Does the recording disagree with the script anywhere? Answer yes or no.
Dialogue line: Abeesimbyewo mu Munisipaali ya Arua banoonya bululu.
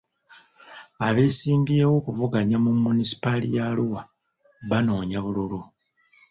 yes